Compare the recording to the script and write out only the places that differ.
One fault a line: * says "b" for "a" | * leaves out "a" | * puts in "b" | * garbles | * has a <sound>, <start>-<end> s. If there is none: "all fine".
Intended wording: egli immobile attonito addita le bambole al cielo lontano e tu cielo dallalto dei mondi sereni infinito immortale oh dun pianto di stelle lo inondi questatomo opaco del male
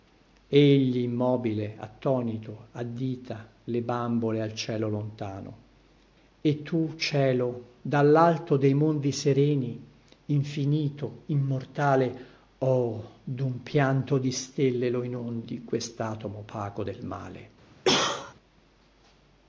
* has a cough, 17.8-18.3 s